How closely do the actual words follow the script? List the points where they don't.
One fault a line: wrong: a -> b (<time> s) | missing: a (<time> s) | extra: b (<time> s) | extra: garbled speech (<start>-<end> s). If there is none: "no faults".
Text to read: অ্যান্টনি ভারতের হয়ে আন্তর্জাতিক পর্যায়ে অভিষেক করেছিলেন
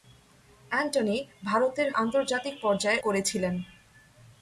missing: হয়ে (1.9 s)
missing: অভিষেক (3.0 s)